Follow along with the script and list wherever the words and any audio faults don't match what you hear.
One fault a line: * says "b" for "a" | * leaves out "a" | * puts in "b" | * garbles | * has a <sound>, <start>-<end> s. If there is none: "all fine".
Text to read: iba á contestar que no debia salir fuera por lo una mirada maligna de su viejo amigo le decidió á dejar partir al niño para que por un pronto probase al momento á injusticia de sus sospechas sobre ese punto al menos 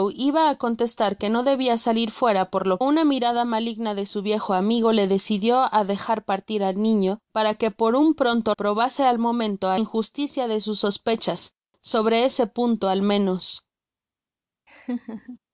* has a laugh, 14.7-15.4 s